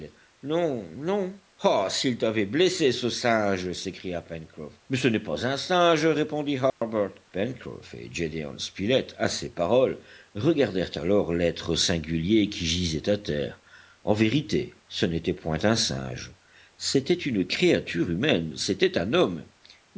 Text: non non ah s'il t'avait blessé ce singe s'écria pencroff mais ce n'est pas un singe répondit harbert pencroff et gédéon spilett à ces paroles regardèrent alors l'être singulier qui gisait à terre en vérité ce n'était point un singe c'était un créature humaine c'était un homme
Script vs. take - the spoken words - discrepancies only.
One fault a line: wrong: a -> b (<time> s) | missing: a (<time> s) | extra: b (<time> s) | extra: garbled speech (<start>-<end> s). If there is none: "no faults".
wrong: un -> une (17.1 s)